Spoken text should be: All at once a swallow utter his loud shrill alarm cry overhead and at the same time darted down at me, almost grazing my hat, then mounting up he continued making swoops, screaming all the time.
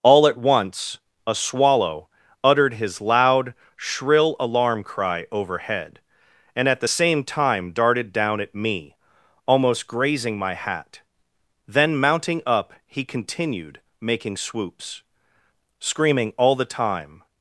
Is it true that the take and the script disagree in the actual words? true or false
true